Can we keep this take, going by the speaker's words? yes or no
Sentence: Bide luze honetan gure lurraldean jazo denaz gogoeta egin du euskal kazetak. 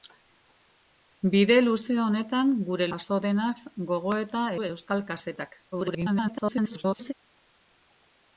no